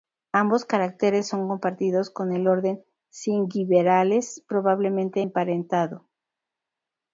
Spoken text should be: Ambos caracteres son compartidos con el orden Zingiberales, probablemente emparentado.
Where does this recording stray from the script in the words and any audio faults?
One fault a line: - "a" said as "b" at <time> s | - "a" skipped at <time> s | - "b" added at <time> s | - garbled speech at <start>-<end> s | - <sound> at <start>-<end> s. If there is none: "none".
none